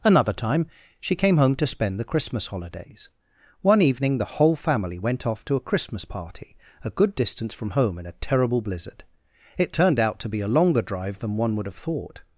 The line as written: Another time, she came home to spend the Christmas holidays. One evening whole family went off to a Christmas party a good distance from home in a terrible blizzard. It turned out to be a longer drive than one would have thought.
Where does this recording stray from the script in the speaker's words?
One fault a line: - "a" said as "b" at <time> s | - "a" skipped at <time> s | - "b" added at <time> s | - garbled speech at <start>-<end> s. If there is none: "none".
- "the" added at 4.2 s